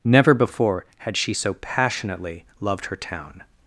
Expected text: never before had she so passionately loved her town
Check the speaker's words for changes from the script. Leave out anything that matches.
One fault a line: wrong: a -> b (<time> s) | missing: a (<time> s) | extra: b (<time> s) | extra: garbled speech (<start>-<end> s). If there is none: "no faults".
no faults